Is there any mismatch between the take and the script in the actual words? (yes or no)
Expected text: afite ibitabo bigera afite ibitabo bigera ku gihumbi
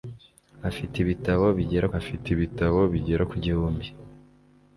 no